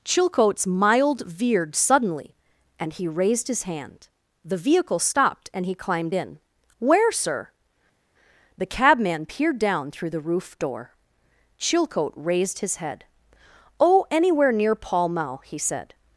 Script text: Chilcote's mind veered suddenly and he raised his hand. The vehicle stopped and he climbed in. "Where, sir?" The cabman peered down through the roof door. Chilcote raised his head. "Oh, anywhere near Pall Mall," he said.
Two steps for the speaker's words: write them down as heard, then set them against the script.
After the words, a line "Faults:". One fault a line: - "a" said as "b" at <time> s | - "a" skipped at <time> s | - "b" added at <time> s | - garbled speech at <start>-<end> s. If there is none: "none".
Chilcote's mild veered suddenly and he raised his hand. The vehicle stopped and he climbed in. "Where, sir?" The cabman peered down through the roof door. Chilcote raised his head. "Oh, anywhere near Pall Mall," he said.
Faults:
- "mind" said as "mild" at 0.7 s